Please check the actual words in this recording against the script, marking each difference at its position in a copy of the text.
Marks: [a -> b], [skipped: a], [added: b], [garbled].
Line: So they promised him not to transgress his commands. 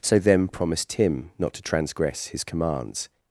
So [they -> them] promised him not to transgress his commands.